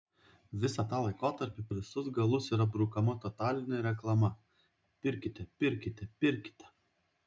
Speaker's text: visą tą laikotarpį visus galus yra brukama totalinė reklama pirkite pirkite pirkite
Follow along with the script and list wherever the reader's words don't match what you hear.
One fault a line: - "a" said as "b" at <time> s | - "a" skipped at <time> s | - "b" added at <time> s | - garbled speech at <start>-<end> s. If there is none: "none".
none